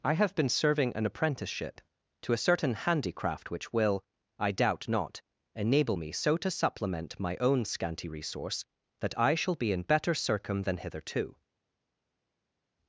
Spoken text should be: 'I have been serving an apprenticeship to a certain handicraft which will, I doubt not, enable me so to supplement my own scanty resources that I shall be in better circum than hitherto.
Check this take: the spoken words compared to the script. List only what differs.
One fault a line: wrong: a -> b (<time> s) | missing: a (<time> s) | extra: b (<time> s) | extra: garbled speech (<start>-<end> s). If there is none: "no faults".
wrong: resources -> resource (8.1 s)